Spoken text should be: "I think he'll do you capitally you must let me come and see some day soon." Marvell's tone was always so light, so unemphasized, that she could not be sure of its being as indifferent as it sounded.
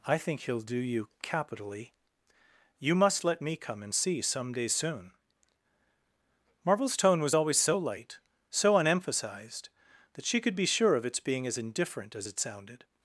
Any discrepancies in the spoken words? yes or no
yes